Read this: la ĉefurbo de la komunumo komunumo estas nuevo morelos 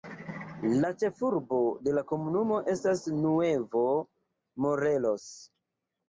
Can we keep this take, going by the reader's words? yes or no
no